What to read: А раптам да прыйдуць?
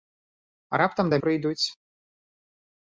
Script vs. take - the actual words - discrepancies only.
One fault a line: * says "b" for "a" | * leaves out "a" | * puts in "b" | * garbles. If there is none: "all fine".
all fine